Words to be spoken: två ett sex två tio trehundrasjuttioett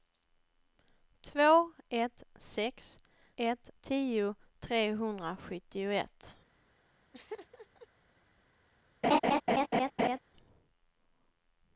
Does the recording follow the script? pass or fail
fail